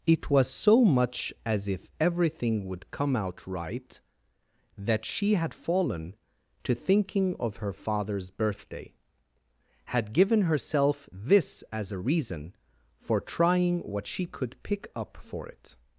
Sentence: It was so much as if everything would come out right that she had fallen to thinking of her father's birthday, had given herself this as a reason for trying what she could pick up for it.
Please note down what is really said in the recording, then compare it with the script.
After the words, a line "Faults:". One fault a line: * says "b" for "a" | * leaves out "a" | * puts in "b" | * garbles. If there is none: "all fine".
It was so much as if everything would come out right that she had fallen to thinking of her father's birthday, had given herself this as a reason for trying what she could pick up for it.
Faults:
all fine